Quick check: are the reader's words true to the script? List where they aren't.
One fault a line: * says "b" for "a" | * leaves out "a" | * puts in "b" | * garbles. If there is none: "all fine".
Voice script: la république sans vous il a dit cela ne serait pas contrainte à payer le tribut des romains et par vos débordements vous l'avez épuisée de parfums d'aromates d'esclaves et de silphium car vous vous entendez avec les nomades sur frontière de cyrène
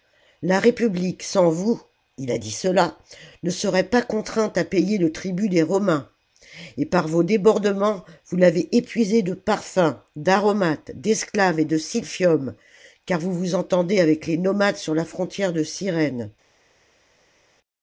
* puts in "la"